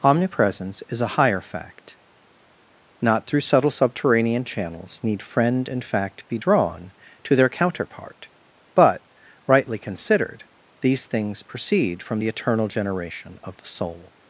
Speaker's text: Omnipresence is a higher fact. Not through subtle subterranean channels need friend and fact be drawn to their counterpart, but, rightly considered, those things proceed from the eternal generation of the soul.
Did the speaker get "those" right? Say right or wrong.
wrong